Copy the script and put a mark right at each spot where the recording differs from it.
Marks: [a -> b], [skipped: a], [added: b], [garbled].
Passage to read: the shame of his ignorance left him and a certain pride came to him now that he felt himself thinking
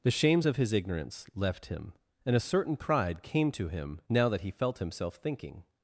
the [shame -> shames] of his ignorance left him and a certain pride came to him now that he felt himself thinking